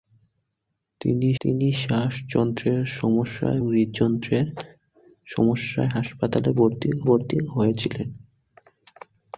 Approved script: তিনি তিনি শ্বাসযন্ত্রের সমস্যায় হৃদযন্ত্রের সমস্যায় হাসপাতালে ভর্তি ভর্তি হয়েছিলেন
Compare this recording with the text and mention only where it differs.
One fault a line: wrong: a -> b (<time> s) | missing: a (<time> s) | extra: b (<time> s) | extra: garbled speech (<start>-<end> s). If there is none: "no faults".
no faults